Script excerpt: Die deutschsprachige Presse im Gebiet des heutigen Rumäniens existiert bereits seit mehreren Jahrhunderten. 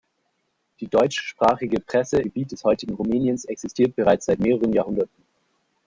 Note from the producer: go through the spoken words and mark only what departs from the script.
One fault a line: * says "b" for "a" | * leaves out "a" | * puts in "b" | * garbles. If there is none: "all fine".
* leaves out "im"